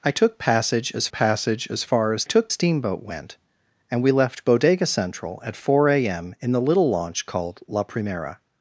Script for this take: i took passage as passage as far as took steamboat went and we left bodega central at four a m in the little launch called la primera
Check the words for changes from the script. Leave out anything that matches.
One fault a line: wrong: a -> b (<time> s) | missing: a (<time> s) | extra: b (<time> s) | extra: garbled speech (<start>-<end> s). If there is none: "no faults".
no faults